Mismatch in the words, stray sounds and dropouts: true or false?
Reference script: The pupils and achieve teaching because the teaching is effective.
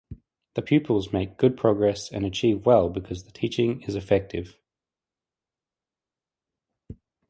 true